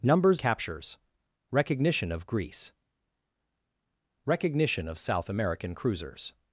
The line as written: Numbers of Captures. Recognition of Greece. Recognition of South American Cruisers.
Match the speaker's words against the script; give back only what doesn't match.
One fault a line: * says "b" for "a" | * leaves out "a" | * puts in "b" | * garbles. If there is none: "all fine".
* leaves out "of"